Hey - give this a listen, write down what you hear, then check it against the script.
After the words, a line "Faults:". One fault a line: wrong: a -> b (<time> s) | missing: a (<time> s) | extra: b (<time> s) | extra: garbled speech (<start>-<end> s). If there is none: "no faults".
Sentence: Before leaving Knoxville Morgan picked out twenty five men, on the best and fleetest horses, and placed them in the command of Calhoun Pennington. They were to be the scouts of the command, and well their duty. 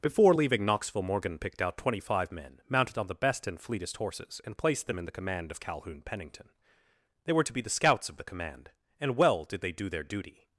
Before leaving Knoxville Morgan picked out twenty five men, mounted on the best and fleetest horses, and placed them in the command of Calhoun Pennington. They were to be the scouts of the command, and well did they do their duty.
Faults:
extra: mounted (2.7 s)
extra: did they do (9.4 s)